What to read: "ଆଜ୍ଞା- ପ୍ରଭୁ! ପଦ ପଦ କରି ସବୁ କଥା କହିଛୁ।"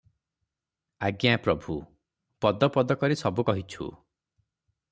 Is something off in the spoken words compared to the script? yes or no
yes